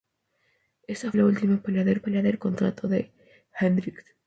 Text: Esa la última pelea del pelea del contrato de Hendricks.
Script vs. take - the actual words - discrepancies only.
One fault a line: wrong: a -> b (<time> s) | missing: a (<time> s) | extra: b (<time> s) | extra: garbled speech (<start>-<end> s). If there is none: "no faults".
no faults